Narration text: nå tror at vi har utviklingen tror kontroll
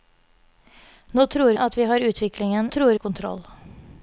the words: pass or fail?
pass